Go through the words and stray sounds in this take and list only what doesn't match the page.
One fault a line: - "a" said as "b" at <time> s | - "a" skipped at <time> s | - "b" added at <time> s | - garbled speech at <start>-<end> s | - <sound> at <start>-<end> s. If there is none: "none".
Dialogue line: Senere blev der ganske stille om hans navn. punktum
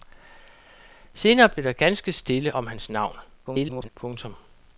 - garbled speech at 3.4-3.9 s